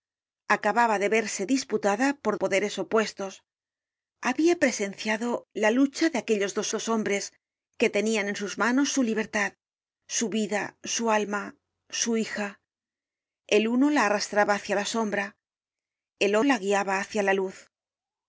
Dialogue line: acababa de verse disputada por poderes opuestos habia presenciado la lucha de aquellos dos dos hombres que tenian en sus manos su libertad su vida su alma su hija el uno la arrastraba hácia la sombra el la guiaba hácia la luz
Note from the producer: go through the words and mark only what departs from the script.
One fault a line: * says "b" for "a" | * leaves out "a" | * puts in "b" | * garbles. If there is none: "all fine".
all fine